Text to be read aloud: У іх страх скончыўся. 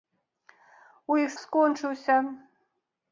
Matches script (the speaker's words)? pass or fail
fail